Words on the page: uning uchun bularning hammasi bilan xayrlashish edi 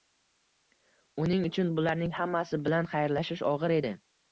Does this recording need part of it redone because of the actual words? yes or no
yes